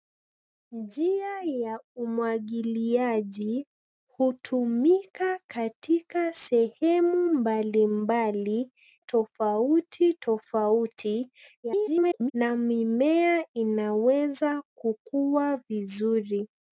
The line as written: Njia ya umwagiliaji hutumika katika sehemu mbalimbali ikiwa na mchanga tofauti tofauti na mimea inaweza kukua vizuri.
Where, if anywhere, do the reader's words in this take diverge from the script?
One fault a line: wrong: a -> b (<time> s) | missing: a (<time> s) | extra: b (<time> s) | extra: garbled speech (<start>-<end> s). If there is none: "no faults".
missing: ikiwa na mchanga (8.7 s)
extra: garbled speech (11.6-12.3 s)